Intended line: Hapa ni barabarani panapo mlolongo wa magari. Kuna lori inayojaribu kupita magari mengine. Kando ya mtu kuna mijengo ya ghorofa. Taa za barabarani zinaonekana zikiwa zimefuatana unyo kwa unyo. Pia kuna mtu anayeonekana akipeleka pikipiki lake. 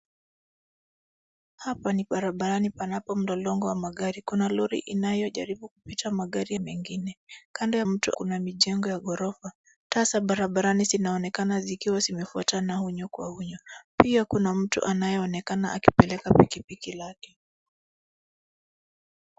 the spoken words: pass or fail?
pass